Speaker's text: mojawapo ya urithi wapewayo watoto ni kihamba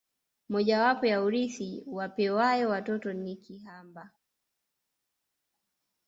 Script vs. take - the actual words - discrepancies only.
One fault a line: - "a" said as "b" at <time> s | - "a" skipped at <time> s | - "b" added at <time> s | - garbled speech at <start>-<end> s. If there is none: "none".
none